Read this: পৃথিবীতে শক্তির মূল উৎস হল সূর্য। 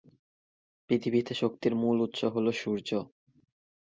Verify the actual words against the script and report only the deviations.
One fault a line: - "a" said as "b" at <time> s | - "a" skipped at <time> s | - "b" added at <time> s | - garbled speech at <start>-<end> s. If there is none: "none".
none